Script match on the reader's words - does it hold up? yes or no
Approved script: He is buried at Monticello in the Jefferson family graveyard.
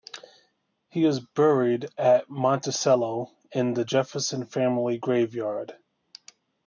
yes